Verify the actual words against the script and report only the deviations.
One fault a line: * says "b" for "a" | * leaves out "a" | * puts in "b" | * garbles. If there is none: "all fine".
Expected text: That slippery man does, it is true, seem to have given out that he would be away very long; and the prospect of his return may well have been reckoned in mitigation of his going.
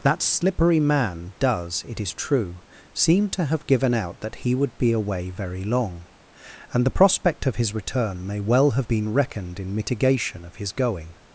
all fine